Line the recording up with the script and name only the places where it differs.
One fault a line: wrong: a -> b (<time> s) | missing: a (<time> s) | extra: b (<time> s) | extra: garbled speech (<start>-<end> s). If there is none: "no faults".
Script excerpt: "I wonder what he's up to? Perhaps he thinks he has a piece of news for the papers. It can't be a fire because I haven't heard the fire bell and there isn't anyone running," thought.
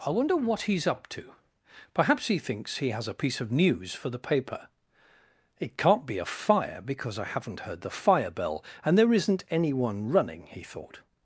wrong: papers -> paper (4.2 s)
extra: he (10.5 s)